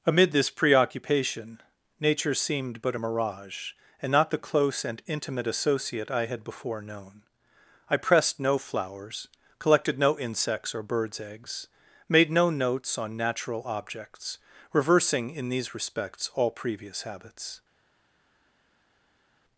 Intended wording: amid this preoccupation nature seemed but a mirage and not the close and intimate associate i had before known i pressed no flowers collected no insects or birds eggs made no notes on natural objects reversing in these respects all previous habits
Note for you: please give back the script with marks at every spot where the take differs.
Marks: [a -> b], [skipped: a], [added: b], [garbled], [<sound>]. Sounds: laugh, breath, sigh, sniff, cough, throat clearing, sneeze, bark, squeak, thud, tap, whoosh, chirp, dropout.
amid this preoccupation nature seemed but a mirage and not the close and intimate associate i had before known i pressed no flowers collected no insects or birds eggs made no notes on natural objects reversing in these respects all previous habits